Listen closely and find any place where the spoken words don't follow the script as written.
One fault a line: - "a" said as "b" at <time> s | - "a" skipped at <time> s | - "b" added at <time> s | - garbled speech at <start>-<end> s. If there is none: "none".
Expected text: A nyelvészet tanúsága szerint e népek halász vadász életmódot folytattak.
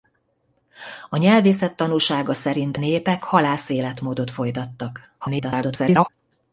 - "e" skipped at 2.8 s
- "vadász" skipped at 3.7 s
- garbled speech at 5.2-6.1 s